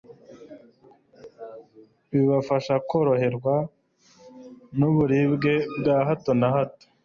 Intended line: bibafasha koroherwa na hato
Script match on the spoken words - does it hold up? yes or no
no